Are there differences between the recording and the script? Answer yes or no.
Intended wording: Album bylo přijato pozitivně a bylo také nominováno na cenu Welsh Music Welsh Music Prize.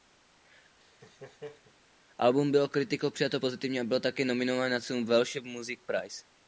yes